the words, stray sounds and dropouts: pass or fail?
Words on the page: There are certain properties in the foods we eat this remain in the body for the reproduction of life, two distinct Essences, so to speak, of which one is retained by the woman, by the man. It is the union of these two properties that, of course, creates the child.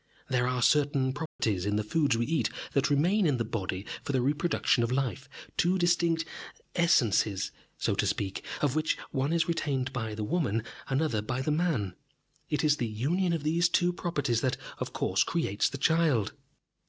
fail